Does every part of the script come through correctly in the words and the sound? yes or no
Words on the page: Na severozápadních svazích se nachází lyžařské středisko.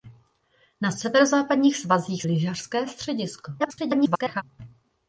no